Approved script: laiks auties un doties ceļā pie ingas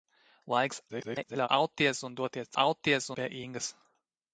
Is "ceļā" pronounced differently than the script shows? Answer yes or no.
yes